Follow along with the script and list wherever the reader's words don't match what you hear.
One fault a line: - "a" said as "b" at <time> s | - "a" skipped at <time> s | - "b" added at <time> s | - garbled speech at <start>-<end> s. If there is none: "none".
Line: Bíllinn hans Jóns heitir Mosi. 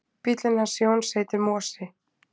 none